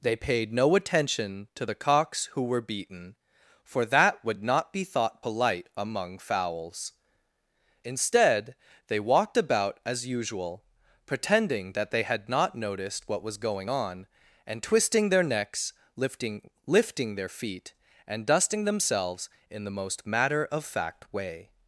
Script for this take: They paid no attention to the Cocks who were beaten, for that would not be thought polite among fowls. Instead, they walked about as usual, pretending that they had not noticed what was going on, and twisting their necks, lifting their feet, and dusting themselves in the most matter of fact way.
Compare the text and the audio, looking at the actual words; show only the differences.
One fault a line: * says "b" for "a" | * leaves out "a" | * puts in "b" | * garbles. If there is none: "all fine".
* puts in "lifting"